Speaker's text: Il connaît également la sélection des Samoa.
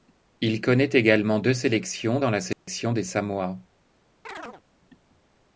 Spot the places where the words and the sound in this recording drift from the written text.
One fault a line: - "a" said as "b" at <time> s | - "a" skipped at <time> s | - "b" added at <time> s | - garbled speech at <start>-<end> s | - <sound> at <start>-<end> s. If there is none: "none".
- "deux sélections dans" added at 1.4 s
- dropout at 2.5-2.7 s
- chirp at 4.2-4.6 s